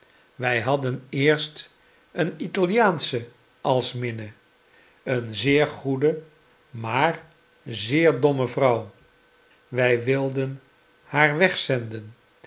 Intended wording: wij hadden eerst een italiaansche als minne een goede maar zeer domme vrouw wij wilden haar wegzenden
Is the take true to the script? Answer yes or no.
no